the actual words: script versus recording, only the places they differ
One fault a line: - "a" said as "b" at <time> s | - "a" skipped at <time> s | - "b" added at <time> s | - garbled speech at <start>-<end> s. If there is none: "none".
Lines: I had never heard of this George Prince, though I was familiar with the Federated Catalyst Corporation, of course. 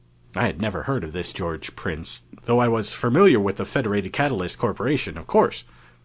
none